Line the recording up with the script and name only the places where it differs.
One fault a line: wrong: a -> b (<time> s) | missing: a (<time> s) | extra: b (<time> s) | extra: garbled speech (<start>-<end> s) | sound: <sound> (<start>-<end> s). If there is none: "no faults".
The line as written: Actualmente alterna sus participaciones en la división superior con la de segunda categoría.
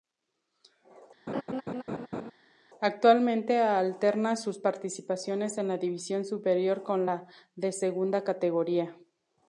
sound: laugh (1.3-2.3 s)